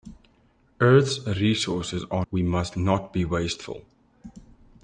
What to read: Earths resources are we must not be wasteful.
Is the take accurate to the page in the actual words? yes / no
yes